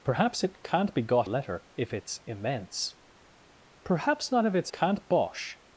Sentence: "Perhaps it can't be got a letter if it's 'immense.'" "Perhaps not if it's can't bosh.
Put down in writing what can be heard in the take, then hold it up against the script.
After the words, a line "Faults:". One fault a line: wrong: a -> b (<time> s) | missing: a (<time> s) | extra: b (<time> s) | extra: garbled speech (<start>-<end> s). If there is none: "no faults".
"Perhaps it can't be got a letter if it's 'immense.'" "Perhaps not if it's can't bosh.
Faults:
no faults